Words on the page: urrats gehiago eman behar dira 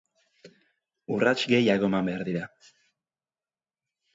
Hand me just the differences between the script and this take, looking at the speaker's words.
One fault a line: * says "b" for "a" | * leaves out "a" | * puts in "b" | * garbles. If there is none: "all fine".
all fine